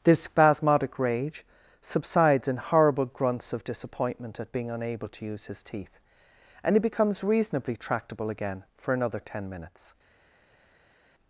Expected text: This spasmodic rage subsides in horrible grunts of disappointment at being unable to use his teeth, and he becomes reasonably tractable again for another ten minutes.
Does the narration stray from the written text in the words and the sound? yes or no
no